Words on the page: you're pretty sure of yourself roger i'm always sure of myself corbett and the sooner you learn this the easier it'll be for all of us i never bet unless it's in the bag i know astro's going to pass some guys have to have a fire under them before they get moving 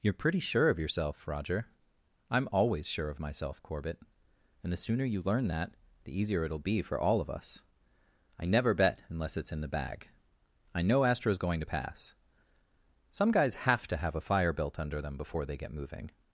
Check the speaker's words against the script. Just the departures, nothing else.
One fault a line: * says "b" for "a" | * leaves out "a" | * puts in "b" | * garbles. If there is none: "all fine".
* says "that" for "this"
* puts in "built"